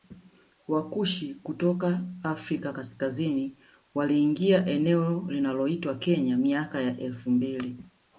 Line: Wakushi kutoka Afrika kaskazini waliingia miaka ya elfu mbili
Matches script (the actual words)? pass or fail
fail